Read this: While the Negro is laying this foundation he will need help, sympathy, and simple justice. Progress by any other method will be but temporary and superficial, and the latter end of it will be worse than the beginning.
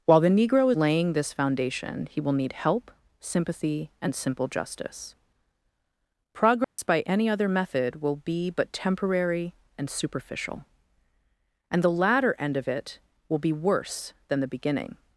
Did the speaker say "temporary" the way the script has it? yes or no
yes